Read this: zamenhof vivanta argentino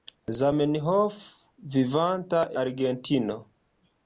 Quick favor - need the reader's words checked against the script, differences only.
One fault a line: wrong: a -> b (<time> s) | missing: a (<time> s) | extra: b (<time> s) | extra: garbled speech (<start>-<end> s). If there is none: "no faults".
no faults